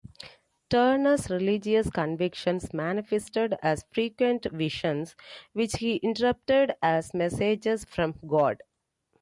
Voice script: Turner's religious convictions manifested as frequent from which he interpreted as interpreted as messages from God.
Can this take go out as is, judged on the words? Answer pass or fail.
fail